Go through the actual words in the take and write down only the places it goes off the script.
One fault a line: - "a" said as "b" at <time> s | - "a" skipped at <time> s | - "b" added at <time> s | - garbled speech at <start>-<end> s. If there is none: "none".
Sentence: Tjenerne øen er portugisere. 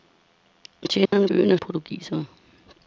none